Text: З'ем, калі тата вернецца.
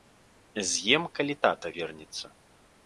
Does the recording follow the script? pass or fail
pass